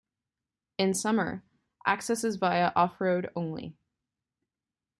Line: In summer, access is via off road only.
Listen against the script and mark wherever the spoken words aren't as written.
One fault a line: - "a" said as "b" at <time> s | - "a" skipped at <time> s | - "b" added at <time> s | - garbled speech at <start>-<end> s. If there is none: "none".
none